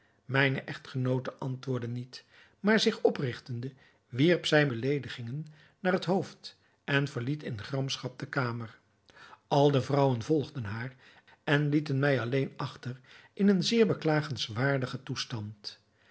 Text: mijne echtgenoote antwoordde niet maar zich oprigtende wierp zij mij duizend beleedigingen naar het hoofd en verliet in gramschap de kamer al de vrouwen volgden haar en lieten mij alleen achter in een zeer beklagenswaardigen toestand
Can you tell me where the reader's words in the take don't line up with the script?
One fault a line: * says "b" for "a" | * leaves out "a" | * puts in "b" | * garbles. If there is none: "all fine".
* leaves out "mij duizend"